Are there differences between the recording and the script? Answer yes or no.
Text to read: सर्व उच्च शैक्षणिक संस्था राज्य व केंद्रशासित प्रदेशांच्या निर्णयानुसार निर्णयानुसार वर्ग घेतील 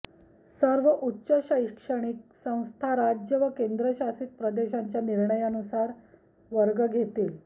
yes